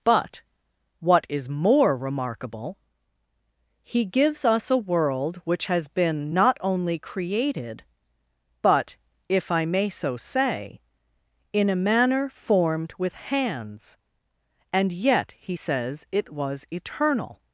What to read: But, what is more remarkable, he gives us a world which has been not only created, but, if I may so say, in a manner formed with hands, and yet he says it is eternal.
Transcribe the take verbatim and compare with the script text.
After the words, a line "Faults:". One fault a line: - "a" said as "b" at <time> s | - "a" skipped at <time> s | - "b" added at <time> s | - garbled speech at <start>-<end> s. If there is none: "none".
But, what is more remarkable, he gives us a world which has been not only created, but, if I may so say, in a manner formed with hands, and yet he says it was eternal.
Faults:
- "is" said as "was" at 16.3 s